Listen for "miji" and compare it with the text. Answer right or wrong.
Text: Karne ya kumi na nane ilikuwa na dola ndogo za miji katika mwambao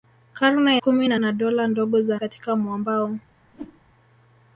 wrong